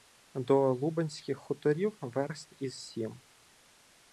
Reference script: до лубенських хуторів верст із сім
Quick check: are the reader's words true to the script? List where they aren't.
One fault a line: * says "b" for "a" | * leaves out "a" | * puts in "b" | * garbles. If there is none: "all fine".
all fine